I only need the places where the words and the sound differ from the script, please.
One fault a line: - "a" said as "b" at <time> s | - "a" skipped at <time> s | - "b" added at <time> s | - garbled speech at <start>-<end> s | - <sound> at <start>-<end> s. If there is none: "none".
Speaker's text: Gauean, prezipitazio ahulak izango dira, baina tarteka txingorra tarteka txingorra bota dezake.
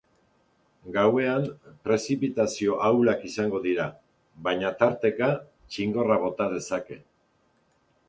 - "tarteka txingorra" skipped at 6.2 s